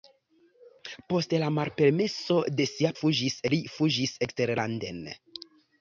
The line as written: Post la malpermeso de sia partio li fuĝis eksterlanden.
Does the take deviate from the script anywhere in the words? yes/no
yes